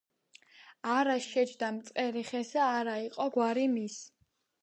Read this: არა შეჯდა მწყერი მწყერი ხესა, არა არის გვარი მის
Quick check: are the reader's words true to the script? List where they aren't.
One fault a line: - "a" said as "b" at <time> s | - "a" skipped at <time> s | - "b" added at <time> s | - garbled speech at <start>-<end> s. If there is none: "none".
- "მწყერი" skipped at 2.2 s
- "არის" said as "იყო" at 3.1 s